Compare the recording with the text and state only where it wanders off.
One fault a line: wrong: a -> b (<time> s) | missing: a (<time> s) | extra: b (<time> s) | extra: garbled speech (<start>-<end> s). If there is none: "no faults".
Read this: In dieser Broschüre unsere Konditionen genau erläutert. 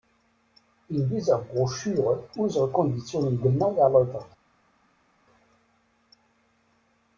no faults